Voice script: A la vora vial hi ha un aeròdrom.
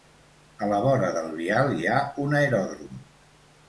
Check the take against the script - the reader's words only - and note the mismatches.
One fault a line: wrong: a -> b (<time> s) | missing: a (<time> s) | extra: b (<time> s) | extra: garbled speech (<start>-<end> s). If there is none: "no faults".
extra: del (1.2 s)